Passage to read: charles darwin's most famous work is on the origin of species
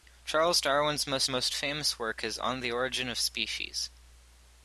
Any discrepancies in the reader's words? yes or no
yes